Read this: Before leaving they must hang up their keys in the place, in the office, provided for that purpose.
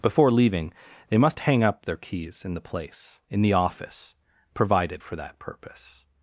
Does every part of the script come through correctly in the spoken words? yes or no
yes